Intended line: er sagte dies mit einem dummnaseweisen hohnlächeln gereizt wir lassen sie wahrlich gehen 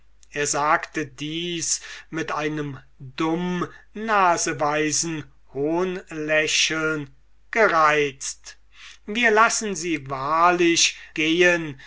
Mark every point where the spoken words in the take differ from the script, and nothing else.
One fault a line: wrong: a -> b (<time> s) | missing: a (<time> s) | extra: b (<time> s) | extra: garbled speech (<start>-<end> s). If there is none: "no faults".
no faults